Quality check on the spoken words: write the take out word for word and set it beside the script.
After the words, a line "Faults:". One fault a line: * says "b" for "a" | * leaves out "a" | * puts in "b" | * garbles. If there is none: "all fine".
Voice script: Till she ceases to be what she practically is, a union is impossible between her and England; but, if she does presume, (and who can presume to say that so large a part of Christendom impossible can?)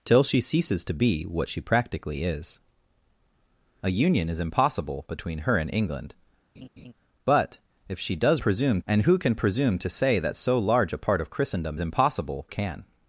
Till she ceases to be what she practically is, a union is impossible between her and England; but, if she does presume, (and who can presume to say that so large a part of Christendom impossible can?)
Faults:
all fine